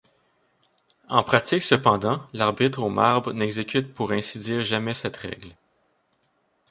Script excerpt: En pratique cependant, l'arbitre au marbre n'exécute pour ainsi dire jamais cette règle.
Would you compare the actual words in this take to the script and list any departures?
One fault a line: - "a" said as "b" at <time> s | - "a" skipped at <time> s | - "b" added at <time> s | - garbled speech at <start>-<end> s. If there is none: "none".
none